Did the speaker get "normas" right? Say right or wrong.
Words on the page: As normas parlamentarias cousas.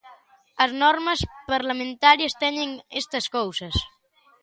right